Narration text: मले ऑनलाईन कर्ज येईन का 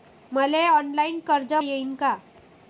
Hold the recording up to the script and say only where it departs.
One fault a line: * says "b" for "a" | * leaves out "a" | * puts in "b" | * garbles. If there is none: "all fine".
all fine